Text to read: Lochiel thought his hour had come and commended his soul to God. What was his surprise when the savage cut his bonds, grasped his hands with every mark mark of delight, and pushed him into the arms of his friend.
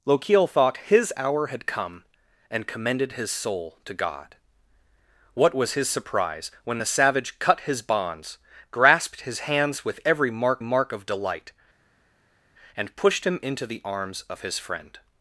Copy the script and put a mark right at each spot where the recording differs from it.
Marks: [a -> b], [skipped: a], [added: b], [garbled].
Lochiel thought his hour had come and commended his soul to God. What was his surprise when the savage cut his bonds, grasped his hands with every mark mark of delight, and pushed him into the arms of his friend.